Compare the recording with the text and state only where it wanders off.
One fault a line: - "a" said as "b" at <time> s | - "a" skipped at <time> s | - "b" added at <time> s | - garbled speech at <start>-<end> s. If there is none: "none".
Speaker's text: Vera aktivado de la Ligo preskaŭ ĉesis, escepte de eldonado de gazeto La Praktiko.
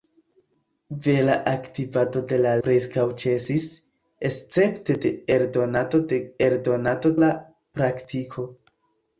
- "Ligo" skipped at 2.5 s
- "gazeto" said as "eldonado" at 6.5 s